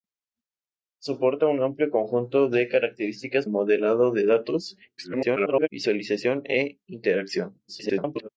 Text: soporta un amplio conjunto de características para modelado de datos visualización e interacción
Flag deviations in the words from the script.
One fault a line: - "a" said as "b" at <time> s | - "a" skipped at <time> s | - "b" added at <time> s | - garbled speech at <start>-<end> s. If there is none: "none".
- "para" skipped at 3.5 s
- garbled speech at 5.0-5.7 s
- garbled speech at 7.7-8.3 s